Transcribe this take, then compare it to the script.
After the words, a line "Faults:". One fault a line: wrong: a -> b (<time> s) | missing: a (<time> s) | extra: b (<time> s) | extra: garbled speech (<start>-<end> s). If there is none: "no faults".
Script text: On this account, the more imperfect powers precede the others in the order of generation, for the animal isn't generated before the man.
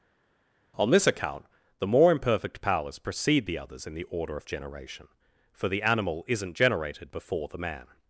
On this account, the more imperfect powers precede the others in the order of generation, for the animal isn't generated before the man.
Faults:
no faults